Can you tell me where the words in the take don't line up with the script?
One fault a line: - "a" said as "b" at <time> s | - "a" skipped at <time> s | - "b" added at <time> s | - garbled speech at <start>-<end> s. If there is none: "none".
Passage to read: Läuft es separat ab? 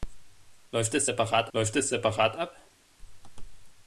- "läuft es separat" added at 1.5 s